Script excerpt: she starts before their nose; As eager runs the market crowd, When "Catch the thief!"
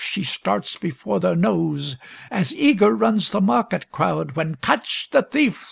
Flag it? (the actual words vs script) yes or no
no